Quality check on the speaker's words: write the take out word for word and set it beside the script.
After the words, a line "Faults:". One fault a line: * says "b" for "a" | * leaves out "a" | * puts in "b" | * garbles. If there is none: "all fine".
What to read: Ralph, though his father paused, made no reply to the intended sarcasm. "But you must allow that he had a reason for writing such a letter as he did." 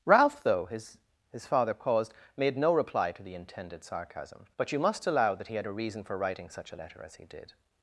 Ralph, though his his father paused, made no reply to the intended sarcasm. "But you must allow that he had a reason for writing such a letter as he did."
Faults:
* puts in "his"